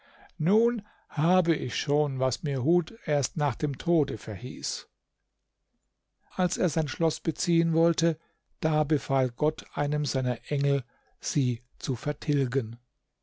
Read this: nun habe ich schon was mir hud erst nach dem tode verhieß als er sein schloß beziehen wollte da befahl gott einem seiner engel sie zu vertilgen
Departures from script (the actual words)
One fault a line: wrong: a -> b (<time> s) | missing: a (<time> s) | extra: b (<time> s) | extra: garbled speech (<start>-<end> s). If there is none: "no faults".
no faults